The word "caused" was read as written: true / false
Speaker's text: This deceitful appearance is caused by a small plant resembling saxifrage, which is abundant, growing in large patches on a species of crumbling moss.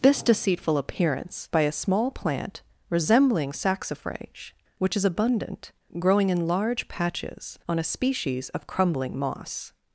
false